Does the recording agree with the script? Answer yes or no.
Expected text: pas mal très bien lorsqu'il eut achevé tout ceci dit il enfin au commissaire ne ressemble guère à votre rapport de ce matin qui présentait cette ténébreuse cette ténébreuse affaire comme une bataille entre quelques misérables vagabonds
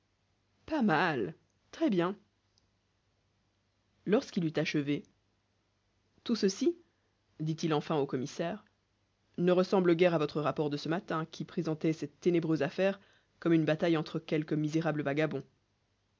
no